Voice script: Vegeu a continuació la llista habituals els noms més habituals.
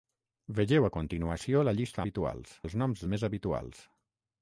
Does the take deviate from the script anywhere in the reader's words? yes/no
no